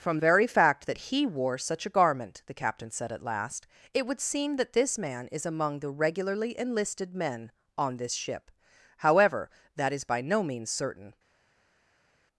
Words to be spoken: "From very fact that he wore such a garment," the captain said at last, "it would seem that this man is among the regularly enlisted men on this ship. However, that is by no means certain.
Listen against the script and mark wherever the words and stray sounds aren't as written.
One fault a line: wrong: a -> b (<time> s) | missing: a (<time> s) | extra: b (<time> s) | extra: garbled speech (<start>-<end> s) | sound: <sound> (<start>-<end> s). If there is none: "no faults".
no faults